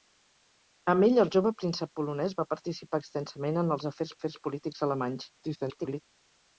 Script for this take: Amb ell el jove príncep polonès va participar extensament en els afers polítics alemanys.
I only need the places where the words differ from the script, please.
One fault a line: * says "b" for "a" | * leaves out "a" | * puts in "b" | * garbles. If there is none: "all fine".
* puts in "afers"
* garbles